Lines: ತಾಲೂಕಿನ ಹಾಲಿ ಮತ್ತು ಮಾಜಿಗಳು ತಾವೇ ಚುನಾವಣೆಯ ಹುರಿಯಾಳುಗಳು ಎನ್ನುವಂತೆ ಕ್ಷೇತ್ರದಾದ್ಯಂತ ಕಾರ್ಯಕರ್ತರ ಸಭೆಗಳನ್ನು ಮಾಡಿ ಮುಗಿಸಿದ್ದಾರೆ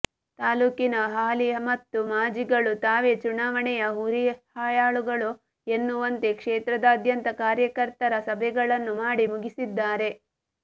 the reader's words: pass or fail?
pass